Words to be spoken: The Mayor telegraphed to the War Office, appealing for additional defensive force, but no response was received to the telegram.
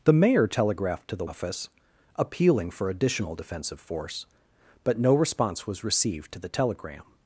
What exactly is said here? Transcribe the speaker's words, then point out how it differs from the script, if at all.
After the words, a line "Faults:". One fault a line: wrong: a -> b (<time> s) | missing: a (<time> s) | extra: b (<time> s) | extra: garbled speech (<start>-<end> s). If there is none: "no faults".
The Mayor telegraphed to the Office, appealing for additional defensive force, but no response was received to the telegram.
Faults:
missing: War (1.2 s)